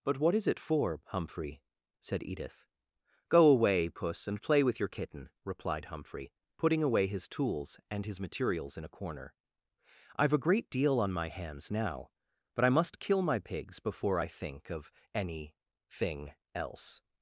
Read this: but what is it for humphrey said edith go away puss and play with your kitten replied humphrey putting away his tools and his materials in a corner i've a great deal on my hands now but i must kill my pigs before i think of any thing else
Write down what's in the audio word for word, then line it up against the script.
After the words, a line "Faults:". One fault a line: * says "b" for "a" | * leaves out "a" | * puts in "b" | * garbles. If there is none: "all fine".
but what is it for humphrey said edith go away puss and play with your kitten replied humphrey putting away his tools and his materials in a corner i've a great deal on my hands now but i must kill my pigs before i think of any thing else
Faults:
all fine